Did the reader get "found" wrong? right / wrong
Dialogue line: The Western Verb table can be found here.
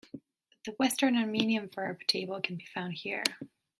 right